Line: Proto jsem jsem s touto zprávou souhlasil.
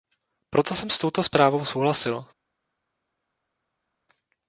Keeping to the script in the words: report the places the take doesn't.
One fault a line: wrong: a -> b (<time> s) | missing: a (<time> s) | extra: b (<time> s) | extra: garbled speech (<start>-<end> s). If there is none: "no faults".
missing: jsem (0.9 s)